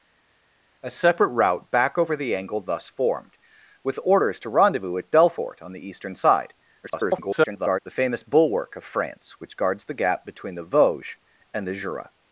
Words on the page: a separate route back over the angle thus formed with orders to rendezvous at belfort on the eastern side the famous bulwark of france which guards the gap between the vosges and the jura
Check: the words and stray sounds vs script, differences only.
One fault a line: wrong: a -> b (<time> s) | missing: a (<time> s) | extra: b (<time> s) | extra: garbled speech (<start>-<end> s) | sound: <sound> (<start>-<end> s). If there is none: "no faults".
extra: garbled speech (6.8-7.8 s)